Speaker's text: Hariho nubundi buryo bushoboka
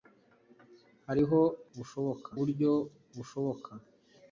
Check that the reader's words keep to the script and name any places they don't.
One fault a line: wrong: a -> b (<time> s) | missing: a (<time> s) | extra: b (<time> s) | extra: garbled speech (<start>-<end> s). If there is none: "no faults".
wrong: nubundi -> bushoboka (1.8 s)